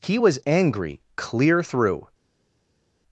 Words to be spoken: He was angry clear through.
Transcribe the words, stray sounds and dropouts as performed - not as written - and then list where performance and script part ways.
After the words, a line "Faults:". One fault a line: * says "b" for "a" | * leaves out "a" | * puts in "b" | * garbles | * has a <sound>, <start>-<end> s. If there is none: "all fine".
He was angry clear through.
Faults:
all fine